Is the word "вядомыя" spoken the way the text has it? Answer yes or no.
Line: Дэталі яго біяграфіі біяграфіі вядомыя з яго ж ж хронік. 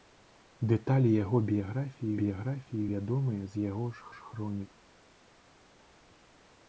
yes